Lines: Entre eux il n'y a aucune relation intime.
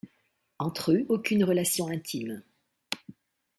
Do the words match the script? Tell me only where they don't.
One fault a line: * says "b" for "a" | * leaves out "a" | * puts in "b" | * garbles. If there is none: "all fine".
* leaves out "il n'y a"